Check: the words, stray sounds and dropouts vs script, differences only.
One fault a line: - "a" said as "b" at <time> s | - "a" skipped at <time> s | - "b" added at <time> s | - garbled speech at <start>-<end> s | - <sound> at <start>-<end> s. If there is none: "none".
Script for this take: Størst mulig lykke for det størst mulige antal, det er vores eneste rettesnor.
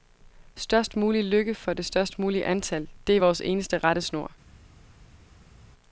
none